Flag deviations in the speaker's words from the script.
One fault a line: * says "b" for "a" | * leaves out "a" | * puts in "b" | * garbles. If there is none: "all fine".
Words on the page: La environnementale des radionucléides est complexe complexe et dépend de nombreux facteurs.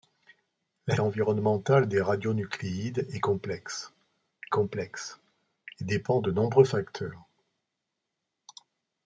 all fine